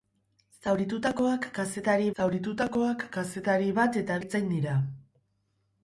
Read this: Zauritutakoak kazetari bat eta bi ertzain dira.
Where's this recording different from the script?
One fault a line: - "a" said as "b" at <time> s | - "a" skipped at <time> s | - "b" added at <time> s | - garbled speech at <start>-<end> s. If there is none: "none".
- "zauritutakoak kazetari" added at 2.2 s
- "bi" skipped at 4.2 s